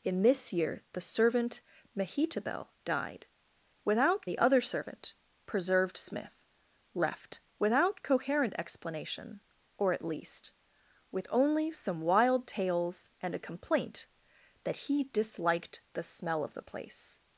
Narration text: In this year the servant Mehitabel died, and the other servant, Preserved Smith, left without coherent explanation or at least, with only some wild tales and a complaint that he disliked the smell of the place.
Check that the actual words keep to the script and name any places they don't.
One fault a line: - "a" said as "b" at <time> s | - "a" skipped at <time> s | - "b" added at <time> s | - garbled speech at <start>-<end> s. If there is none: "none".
- "and" said as "without" at 3.8 s